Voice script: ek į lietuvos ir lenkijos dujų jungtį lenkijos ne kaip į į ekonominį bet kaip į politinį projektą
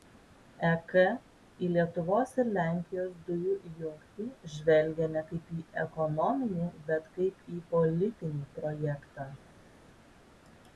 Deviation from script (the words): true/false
true